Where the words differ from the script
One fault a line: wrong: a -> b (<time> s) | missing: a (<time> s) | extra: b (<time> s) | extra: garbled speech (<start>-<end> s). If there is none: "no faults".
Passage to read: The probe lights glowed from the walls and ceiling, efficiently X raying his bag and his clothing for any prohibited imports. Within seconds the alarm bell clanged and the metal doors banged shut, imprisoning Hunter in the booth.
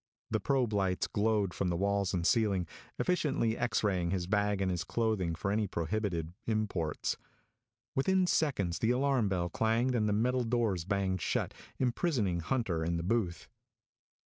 no faults